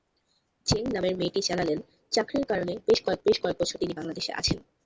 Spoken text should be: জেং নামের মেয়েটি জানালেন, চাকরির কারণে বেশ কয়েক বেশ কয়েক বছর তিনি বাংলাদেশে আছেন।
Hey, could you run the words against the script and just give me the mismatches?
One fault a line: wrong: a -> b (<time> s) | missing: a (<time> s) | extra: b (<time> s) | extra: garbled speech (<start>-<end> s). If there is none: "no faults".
no faults